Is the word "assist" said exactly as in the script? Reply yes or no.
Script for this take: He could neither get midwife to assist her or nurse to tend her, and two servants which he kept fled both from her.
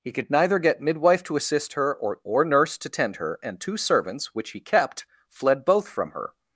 yes